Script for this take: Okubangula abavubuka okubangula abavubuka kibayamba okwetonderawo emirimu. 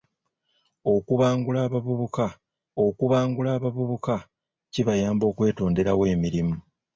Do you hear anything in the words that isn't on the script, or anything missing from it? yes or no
no